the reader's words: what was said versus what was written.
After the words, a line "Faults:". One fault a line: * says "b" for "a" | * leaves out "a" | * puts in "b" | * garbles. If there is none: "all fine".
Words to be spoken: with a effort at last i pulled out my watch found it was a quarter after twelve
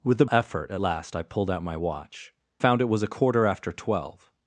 with a effort at last i pulled out my watch found it was a quarter after twelve
Faults:
all fine